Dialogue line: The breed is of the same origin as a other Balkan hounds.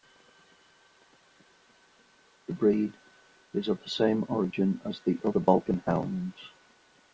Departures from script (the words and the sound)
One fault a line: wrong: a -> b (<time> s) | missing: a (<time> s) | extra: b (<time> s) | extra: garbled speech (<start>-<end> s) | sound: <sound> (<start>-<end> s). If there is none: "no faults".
wrong: a -> the (5.0 s)